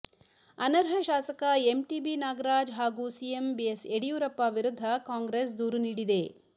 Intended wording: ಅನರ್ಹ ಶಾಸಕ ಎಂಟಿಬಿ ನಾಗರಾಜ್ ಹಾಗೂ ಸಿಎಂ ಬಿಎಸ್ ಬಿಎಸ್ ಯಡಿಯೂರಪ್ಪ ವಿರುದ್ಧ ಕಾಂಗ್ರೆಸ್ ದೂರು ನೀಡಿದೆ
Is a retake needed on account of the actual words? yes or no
yes